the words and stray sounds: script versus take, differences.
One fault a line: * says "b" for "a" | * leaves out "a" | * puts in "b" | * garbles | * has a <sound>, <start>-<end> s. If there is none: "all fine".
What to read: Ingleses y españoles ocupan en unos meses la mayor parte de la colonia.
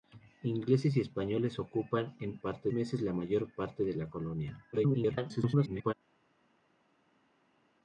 * says "parte" for "unos"
* garbles